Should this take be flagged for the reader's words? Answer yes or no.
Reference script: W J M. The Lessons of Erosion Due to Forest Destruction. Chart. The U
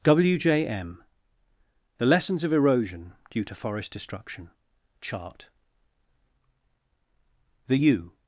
no